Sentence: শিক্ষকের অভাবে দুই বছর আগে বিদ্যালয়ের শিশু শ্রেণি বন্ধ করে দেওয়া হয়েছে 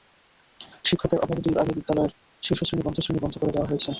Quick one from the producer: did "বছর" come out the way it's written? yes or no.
no